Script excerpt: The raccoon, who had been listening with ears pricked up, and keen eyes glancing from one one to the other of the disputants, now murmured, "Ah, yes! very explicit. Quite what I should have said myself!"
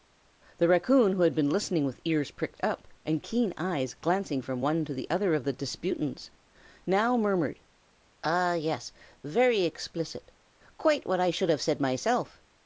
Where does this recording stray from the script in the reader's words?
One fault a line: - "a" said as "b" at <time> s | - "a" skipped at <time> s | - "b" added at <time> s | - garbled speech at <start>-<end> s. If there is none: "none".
- "one" skipped at 4.8 s